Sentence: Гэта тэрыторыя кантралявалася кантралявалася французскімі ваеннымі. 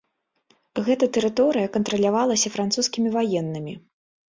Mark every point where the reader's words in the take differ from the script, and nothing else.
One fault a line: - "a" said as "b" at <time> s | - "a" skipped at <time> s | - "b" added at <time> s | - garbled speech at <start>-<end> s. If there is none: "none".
- "кантралявалася" skipped at 2.5 s